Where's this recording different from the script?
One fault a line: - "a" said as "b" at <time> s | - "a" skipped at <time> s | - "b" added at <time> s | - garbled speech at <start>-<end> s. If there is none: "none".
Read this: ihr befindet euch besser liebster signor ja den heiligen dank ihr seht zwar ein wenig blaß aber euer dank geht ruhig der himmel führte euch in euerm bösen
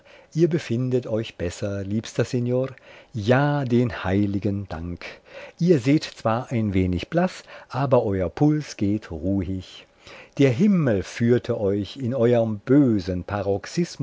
- "dank" said as "puls" at 8.3 s